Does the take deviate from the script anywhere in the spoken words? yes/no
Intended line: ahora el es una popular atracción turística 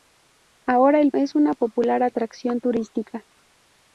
no